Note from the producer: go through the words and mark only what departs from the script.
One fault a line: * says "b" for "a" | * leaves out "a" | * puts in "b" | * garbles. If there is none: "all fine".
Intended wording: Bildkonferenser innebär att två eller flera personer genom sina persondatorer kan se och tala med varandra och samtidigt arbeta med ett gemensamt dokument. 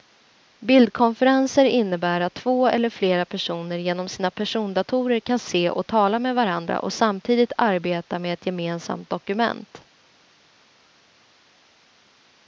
all fine